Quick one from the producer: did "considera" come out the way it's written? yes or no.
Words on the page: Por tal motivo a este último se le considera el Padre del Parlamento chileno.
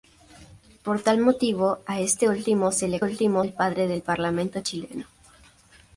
no